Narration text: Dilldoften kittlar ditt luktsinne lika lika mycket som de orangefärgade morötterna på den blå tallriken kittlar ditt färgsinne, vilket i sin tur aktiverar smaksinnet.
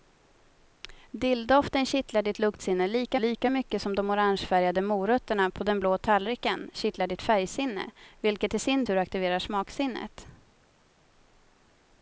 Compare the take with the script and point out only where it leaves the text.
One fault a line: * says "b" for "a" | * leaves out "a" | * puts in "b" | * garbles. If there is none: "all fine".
all fine